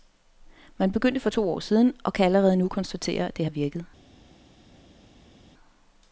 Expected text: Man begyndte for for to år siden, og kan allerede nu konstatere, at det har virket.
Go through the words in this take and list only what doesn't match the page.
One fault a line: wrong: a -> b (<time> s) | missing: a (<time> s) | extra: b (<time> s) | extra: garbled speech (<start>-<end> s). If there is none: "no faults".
missing: for (1.3 s)